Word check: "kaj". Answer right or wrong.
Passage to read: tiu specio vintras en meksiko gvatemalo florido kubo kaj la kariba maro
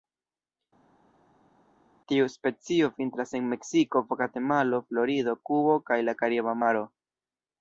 right